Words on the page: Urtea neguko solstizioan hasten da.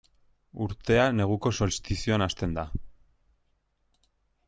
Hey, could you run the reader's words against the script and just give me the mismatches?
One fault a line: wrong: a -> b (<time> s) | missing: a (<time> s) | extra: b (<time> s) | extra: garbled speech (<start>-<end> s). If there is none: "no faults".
no faults